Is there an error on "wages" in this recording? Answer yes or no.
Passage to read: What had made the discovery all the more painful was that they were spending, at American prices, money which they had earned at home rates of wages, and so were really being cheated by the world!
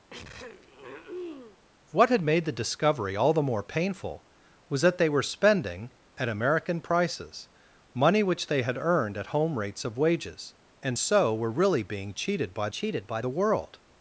no